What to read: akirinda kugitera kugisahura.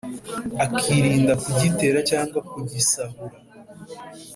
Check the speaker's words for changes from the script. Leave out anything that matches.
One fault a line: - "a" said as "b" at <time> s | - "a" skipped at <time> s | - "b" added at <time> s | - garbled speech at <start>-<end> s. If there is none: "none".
- "cyangwa" added at 2.1 s